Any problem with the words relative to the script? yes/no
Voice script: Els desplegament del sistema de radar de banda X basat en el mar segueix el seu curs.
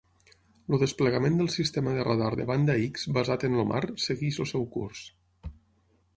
yes